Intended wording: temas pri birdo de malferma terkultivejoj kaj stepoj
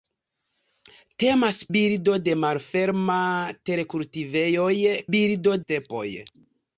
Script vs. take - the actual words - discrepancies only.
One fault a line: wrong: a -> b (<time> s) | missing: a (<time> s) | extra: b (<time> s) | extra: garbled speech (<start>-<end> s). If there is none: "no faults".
missing: pri (1.6 s)
wrong: kaj -> birdo (5.1 s)